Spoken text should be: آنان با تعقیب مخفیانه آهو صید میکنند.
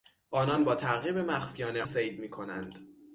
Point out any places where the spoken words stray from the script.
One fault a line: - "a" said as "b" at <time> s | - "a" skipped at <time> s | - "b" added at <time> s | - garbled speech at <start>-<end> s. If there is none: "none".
- "آهو" skipped at 1.8 s